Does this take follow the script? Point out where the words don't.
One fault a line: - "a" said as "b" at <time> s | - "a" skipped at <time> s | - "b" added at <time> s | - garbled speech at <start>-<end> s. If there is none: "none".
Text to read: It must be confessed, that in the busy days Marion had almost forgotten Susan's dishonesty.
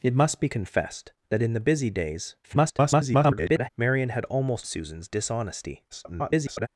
- garbled speech at 2.4-3.7 s
- "forgotten" skipped at 4.7 s
- garbled speech at 5.9-6.7 s